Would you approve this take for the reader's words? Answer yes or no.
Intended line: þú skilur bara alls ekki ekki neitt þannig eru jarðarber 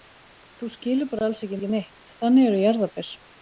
yes